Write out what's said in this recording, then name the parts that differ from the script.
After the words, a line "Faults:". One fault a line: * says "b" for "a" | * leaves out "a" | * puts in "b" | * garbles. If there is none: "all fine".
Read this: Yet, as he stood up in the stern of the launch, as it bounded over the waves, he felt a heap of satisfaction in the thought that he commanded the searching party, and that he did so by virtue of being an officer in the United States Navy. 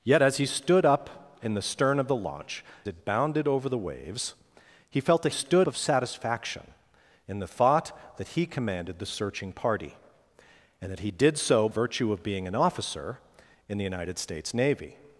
Yet, as he stood up in the stern of the launch, it bounded over the waves, he felt a stood of satisfaction in the thought that he commanded the searching party, and that he did so virtue of being an officer in the United States Navy.
Faults:
* leaves out "as"
* says "stood" for "heap"
* leaves out "by"